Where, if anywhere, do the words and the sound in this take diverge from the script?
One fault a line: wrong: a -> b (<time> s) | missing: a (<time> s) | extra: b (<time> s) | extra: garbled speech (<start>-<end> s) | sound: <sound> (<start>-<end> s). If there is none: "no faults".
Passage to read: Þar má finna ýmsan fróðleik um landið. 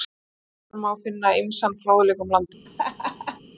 sound: laugh (2.7-3.4 s)